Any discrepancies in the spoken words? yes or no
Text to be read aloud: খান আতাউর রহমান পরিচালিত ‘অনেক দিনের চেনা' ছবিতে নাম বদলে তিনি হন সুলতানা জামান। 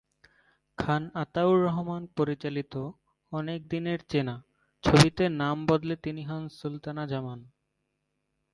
no